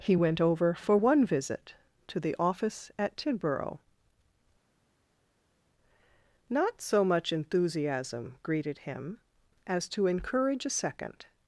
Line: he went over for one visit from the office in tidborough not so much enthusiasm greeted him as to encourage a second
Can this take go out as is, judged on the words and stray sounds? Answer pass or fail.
fail